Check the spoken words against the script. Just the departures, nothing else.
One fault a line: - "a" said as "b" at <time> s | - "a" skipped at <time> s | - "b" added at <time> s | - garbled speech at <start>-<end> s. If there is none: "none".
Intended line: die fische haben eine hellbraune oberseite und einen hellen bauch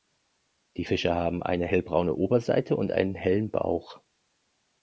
none